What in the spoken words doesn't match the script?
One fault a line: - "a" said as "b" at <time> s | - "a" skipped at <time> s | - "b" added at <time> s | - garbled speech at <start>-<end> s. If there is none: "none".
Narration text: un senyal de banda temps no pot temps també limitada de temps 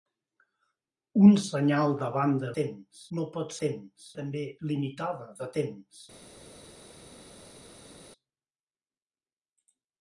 none